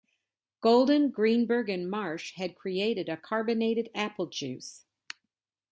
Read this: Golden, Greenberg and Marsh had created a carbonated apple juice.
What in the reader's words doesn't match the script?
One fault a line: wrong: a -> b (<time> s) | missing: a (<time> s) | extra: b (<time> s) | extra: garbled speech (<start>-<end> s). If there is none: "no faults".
no faults